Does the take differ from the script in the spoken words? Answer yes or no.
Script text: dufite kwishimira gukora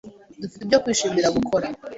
yes